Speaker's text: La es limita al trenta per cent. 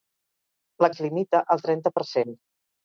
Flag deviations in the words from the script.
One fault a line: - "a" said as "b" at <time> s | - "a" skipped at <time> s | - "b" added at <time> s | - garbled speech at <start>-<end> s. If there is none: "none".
none